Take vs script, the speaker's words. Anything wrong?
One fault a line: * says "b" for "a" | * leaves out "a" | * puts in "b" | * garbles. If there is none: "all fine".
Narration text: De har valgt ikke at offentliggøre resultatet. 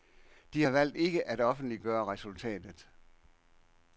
all fine